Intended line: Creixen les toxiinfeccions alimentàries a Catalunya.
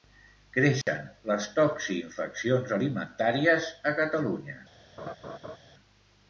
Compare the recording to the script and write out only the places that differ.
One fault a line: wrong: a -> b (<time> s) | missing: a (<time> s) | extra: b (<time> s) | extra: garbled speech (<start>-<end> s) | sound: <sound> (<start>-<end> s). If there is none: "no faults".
sound: dropout (0.8-0.9 s)
sound: laugh (5.0-5.6 s)